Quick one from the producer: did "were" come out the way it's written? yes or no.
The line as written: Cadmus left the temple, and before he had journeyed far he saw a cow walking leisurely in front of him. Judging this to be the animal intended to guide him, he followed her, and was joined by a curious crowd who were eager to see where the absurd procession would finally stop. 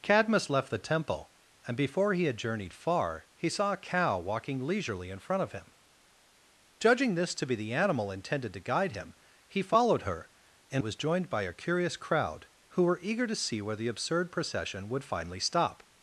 yes